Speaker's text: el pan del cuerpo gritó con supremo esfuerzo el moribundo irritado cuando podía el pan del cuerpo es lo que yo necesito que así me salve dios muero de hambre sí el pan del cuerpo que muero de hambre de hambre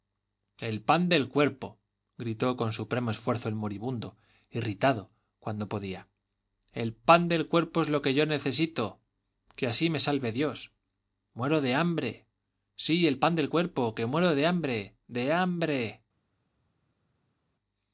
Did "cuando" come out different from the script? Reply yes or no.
no